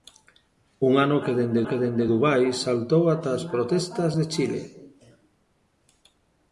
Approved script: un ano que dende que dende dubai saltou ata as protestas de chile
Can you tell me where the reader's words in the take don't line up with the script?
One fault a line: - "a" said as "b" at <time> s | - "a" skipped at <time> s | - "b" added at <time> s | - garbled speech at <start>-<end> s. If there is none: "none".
none